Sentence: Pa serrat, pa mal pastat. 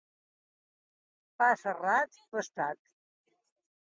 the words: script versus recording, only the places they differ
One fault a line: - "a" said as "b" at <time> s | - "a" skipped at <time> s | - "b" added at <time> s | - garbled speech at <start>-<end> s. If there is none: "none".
- "pa mal" skipped at 2.2 s